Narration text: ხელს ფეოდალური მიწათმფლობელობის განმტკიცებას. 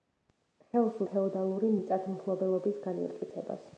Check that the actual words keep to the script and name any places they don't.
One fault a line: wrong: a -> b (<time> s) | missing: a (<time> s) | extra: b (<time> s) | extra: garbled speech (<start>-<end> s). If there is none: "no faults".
no faults